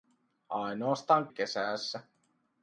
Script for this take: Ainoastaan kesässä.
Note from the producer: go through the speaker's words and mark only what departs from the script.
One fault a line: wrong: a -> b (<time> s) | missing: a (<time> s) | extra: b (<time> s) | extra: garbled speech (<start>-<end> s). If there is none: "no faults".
no faults